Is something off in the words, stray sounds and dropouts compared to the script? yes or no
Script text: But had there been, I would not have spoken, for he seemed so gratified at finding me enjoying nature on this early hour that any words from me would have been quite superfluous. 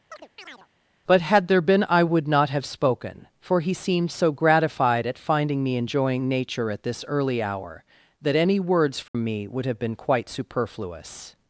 yes